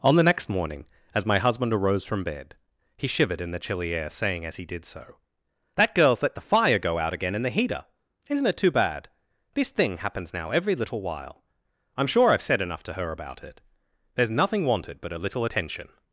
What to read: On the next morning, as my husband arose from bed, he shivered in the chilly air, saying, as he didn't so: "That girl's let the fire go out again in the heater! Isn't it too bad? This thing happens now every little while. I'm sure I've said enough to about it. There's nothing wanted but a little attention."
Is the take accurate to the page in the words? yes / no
no